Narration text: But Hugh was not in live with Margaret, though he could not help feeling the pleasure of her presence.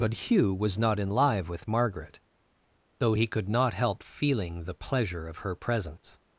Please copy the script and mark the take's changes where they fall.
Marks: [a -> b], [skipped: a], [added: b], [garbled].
But Hugh was not in live with Margaret, though he could not help feeling the pleasure of her presence.